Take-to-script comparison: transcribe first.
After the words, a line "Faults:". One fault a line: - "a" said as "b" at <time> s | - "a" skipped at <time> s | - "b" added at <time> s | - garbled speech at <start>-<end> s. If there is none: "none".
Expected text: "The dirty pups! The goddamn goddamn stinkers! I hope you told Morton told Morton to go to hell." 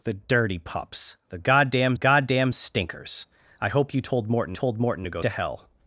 "The dirty pups! The goddamn goddamn stinkers! I hope you told Morton told Morton to go to hell."
Faults:
none